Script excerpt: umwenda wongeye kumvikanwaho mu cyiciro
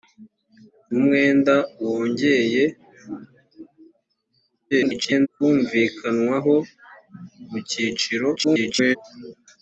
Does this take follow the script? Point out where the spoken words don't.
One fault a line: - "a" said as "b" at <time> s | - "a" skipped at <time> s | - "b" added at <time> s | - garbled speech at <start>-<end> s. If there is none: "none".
- garbled speech at 4.7-5.3 s
- garbled speech at 8.4-9.0 s